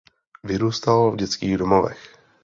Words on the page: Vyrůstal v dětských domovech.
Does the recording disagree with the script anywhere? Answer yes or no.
no